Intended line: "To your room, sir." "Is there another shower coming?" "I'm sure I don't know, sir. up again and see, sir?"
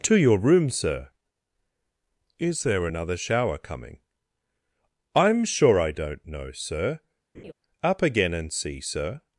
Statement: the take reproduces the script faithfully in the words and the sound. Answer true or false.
false